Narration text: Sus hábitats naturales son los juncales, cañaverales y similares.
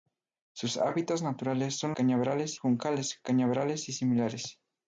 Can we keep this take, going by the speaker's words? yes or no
no